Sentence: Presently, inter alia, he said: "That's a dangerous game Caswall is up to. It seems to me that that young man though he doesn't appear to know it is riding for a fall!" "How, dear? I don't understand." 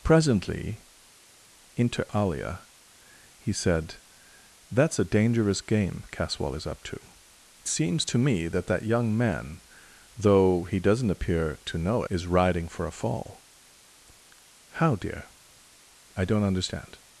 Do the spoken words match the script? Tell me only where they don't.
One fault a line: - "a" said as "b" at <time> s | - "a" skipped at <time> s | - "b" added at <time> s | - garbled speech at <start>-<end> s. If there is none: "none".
- "It" skipped at 7.0 s
- "it" skipped at 12.0 s